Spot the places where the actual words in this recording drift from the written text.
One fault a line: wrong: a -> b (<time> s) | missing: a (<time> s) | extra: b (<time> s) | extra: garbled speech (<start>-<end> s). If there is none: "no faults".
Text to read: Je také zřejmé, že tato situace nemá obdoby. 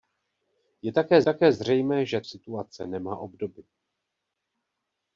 extra: také (1.2 s)
missing: tato (2.2 s)